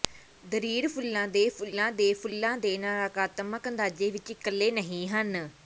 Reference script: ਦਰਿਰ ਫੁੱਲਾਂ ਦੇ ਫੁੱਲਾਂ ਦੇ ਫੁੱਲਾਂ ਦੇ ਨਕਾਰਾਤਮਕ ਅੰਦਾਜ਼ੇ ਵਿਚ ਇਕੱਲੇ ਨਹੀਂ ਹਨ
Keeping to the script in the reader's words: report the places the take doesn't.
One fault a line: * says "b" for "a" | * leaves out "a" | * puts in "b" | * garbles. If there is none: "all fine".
all fine